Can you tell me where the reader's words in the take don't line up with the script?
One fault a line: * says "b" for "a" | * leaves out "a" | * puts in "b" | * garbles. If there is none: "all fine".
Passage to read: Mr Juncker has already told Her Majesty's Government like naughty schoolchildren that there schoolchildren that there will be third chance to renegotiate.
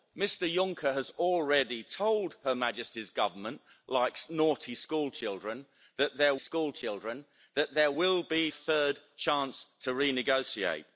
all fine